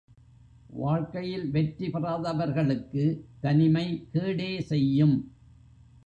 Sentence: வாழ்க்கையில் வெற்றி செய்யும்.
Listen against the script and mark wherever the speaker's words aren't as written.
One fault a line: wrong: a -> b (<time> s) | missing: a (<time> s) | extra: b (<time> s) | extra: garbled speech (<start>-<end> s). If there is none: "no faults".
extra: பெறாதவர்களுக்கு தனிமை கேடே (1.9 s)